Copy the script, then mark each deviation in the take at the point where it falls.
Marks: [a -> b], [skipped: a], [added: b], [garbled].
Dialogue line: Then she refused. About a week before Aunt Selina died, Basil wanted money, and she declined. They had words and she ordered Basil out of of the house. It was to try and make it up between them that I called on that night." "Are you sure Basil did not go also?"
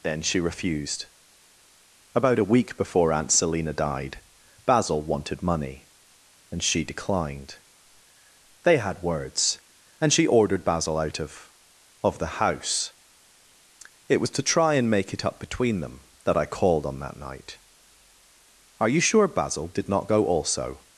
Then she refused. About a week before Aunt Selina died, Basil wanted money, and she declined. They had words and she ordered Basil out of of the house. It was to try and make it up between them that I called on that night." "Are you sure Basil did not go also?"